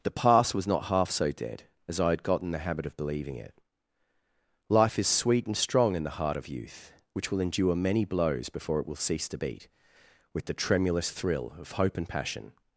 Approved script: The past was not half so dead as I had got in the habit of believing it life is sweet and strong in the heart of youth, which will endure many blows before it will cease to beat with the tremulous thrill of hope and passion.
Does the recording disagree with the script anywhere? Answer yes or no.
no